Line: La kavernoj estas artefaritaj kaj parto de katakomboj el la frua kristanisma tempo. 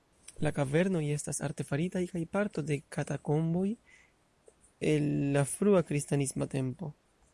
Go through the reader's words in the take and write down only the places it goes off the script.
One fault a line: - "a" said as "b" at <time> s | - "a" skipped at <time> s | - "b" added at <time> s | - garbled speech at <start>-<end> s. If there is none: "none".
none